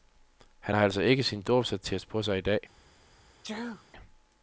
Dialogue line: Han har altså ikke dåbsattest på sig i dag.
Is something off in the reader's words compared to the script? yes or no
yes